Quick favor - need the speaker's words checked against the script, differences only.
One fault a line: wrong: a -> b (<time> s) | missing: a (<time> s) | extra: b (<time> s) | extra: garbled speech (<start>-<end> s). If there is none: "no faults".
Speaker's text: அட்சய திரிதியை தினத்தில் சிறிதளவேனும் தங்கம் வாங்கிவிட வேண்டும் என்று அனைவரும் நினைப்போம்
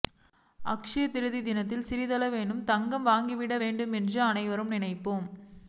no faults